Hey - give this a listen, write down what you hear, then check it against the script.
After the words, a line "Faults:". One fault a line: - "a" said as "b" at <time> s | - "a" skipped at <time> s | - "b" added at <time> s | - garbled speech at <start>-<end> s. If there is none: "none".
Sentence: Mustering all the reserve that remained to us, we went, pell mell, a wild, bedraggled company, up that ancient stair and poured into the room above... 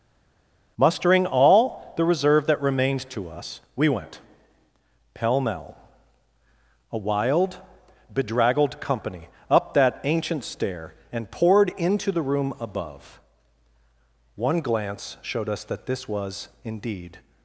Mustering all the reserve that remained to us, we went, pell mell, a wild, bedraggled company, up that ancient stair and poured into the room above... One glance showed us that this was indeed
Faults:
- "One glance showed us that this was indeed" added at 14.4 s